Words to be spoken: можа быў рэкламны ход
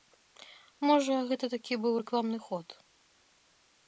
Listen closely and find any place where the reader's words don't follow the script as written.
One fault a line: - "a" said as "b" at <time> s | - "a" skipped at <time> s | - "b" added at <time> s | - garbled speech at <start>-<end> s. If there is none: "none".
- "гэта такі" added at 1.3 s